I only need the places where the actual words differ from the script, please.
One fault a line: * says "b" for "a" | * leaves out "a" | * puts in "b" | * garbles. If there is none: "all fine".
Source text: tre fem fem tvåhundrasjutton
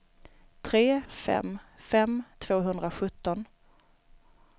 all fine